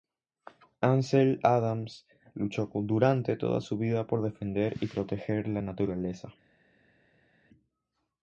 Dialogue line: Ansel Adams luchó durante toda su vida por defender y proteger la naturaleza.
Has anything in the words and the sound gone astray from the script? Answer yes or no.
no